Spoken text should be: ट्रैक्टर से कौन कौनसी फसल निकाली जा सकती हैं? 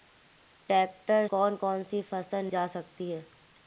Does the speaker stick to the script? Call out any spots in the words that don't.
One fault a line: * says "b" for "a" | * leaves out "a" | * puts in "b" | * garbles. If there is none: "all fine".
* leaves out "से"
* leaves out "निकाली"